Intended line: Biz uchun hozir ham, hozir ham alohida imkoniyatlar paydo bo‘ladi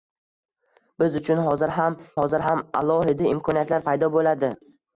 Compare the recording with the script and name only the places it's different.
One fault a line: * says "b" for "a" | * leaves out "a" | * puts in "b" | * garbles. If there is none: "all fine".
all fine